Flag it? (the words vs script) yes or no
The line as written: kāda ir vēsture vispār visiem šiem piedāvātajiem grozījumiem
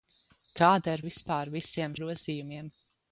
yes